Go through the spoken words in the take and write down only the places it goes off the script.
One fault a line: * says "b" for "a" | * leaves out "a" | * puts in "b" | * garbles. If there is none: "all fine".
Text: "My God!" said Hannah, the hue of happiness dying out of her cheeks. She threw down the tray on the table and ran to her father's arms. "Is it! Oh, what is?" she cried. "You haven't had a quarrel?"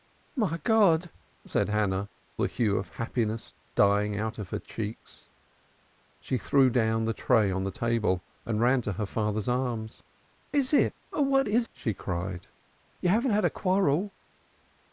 all fine